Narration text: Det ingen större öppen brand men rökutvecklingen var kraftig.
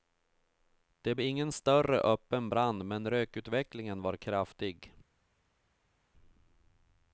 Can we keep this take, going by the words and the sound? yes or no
yes